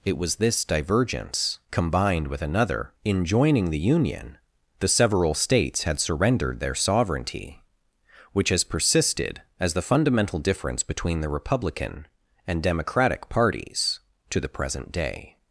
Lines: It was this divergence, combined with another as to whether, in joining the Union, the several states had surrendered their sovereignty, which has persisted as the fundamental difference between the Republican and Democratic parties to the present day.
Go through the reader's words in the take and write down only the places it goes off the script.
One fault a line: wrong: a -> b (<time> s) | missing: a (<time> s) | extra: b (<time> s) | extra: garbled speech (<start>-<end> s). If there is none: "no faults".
missing: as to whether (2.9 s)